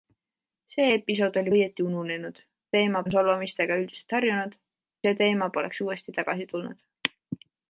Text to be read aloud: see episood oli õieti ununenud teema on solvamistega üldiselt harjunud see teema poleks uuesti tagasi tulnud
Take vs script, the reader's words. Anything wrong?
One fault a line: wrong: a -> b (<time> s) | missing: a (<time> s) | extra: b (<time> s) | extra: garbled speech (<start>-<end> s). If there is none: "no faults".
no faults